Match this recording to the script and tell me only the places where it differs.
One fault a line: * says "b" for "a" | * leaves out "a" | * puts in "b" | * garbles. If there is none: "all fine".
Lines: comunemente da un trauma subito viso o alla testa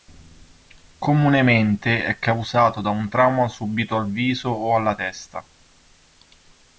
* puts in "è causato"
* puts in "al"